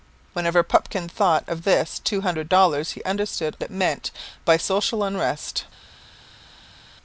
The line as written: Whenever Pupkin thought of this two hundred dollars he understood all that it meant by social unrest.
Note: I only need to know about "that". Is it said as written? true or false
false